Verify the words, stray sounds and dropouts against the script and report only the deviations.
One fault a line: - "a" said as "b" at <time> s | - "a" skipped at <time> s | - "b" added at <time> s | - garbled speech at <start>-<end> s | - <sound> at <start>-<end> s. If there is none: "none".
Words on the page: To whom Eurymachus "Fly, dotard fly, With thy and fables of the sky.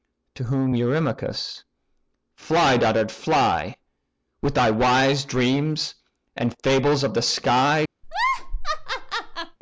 - "wise dreams" added at 4.7 s
- laugh at 8.0-9.6 s